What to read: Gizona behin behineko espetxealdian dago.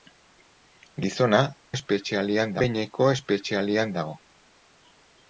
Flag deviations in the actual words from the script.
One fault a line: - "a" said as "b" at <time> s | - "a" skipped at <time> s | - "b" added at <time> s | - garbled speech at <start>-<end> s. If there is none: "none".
- "behin" said as "espetxealdian" at 1.7 s